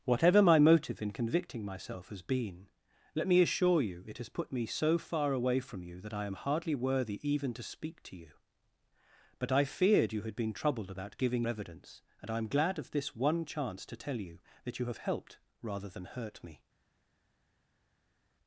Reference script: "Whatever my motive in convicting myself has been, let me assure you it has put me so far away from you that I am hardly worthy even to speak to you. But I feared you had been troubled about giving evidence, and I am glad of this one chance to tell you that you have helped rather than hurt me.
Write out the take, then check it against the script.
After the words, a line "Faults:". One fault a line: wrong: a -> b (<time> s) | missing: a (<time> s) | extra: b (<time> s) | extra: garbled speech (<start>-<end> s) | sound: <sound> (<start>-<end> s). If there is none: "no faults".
"Whatever my motive in convicting myself has been, let me assure you it has put me so far away from you that I am hardly worthy even to speak to you. But I feared you had been troubled about giving evidence, and I am glad of this one chance to tell you that you have helped rather than hurt me.
Faults:
no faults